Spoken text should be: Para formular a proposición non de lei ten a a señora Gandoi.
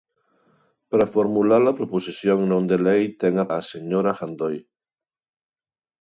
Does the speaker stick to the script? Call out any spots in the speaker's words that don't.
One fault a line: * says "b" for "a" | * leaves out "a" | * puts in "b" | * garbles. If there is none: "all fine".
all fine